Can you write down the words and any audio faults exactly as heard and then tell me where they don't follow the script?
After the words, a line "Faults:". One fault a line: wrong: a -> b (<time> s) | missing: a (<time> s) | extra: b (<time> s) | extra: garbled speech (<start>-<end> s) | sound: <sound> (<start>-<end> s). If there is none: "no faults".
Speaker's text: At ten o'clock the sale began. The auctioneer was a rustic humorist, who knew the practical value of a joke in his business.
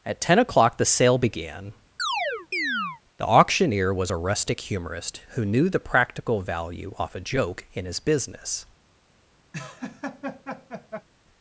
At ten o'clock the sale began. The auctioneer was a rustic humorist, who knew the practical value off a joke in his business.
Faults:
sound: chirp (2.0-3.0 s)
wrong: of -> off (7.0 s)
sound: laugh (9.5-11.1 s)